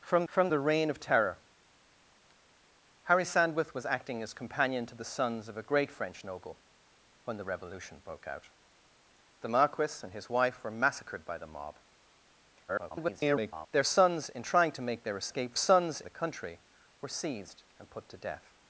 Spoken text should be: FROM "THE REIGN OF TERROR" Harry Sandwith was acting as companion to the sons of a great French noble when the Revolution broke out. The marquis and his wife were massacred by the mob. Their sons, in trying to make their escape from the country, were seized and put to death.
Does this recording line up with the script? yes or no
no